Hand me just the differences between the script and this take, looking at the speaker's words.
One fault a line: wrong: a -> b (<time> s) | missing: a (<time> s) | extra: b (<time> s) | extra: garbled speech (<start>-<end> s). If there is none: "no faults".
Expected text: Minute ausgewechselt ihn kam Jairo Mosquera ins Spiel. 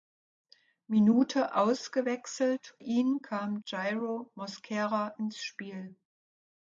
no faults